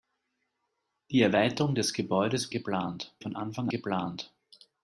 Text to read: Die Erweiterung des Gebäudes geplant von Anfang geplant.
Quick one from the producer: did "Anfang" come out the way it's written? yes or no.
yes